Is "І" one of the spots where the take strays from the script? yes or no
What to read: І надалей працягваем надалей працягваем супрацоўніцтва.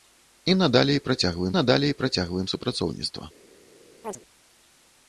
no